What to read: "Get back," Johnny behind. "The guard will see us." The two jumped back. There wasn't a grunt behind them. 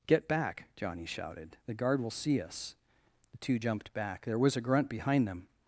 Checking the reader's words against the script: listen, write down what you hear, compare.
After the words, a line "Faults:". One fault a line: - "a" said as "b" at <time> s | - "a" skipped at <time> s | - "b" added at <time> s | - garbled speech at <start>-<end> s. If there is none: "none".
"Get back," Johnny shouted. "The guard will see us." The two jumped back. There was a grunt behind them.
Faults:
- "behind" said as "shouted" at 1.1 s
- "wasn't" said as "was" at 4.4 s